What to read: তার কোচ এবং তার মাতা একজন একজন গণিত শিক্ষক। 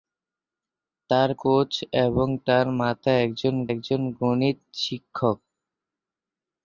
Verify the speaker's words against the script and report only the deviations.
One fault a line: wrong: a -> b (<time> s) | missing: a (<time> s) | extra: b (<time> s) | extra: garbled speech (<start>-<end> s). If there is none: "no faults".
no faults